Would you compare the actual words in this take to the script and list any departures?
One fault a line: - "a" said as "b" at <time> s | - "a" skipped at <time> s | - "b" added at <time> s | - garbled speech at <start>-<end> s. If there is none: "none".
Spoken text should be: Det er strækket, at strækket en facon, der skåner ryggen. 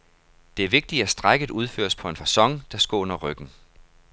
- "strækket" said as "vigtigt" at 0.7 s
- "udføres på" added at 1.5 s